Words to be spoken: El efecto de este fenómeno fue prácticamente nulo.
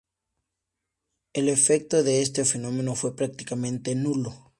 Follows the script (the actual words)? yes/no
yes